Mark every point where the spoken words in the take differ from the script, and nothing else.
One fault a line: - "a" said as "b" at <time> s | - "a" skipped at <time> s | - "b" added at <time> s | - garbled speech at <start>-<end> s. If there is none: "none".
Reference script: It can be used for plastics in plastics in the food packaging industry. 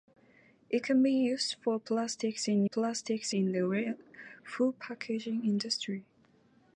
none